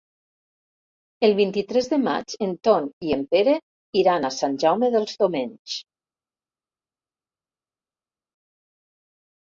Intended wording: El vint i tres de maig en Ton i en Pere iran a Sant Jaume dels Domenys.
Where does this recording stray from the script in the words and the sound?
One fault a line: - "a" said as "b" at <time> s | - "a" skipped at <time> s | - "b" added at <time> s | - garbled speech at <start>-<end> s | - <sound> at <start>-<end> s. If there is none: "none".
none